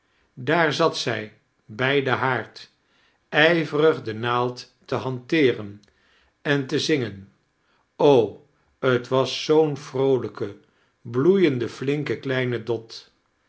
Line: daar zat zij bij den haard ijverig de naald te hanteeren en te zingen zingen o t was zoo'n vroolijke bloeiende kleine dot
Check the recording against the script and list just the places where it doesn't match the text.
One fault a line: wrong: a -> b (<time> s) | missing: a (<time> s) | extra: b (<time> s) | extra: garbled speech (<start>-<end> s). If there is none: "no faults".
missing: zingen (7.3 s)
extra: flinke (11.7 s)